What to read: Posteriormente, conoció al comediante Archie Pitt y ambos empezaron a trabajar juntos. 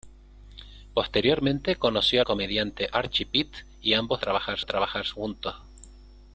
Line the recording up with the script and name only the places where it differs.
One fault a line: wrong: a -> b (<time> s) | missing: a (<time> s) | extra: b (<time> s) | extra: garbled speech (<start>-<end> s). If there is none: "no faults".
missing: al (2.2 s)
wrong: empezaron -> trabajar (4.2 s)